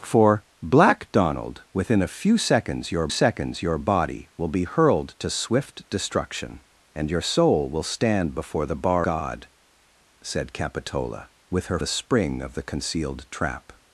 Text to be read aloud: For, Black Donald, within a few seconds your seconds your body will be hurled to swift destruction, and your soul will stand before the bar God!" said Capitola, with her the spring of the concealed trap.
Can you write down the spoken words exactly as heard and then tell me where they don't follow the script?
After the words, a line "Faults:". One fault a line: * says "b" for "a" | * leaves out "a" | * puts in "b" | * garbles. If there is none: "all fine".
For, Black Donald, within a few seconds your seconds your body will be hurled to swift destruction, and your soul will stand before the bar God!" said Capitola, with her the spring of the concealed trap.
Faults:
all fine